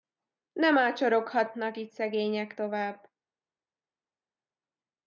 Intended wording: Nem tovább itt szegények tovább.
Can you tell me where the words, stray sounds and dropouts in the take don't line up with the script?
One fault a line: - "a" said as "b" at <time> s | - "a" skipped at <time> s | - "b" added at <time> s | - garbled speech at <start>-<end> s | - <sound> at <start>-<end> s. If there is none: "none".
- "tovább" said as "ácsoroghatnak" at 0.8 s